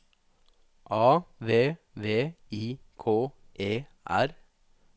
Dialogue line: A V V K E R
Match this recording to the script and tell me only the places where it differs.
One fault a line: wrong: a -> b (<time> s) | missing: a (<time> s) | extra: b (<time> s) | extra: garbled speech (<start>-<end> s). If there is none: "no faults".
extra: I (2.5 s)